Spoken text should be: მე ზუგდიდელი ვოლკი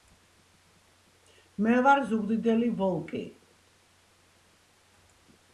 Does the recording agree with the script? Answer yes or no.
no